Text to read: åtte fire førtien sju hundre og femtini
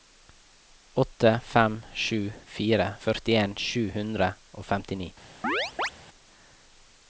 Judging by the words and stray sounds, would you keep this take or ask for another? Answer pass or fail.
fail